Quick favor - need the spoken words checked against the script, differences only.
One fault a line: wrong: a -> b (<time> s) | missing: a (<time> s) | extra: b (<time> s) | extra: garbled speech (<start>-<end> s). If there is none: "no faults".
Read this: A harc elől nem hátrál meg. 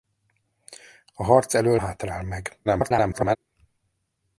missing: nem (1.8 s)
extra: garbled speech (2.6-3.4 s)